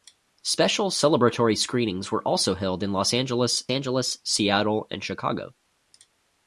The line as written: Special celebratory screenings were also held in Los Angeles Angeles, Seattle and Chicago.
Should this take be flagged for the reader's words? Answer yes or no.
no